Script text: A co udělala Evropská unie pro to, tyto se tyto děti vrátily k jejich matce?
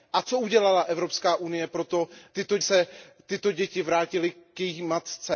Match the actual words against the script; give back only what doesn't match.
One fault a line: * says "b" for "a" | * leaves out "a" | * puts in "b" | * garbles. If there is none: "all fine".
all fine